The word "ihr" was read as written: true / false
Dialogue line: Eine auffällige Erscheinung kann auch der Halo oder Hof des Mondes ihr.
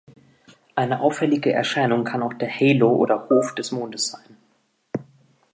false